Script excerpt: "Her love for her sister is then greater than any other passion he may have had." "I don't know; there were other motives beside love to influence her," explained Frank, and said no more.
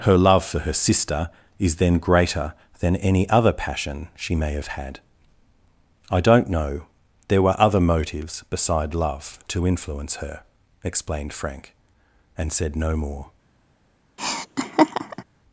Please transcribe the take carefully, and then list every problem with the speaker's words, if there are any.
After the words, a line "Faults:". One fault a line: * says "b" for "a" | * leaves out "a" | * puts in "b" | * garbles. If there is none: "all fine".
"Her love for her sister is then greater than any other passion she may have had." "I don't know; there were other motives beside love to influence her," explained Frank, and said no more.
Faults:
* says "she" for "he"